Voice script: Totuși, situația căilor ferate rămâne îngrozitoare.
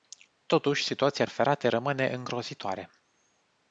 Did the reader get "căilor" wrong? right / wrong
wrong